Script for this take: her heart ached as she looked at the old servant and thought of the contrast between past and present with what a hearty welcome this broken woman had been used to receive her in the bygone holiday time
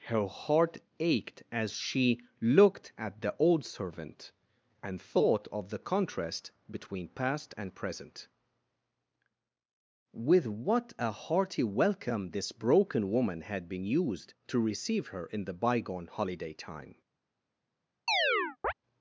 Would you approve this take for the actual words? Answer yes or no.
yes